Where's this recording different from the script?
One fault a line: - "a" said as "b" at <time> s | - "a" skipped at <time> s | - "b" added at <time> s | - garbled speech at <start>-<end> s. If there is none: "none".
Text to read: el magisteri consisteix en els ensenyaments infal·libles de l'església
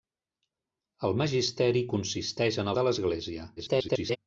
- "els ensenyaments infal·libles" skipped at 2.7 s
- garbled speech at 3.6-4.2 s